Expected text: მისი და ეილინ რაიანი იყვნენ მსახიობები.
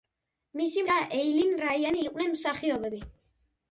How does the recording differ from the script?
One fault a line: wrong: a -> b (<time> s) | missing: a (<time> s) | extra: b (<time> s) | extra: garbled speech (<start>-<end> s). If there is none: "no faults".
no faults